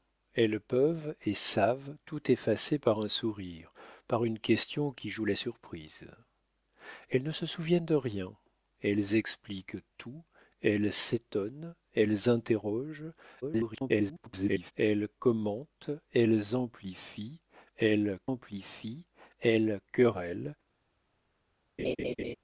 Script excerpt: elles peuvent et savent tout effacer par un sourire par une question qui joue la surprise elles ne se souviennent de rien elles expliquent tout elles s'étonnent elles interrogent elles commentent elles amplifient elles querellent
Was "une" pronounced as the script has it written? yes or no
yes